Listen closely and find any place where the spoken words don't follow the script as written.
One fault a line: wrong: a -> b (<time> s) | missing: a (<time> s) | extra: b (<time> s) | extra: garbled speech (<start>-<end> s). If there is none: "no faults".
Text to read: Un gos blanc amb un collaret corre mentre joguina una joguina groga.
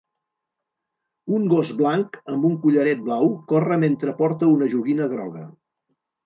extra: blau (3.1 s)
wrong: joguina -> porta (4.2 s)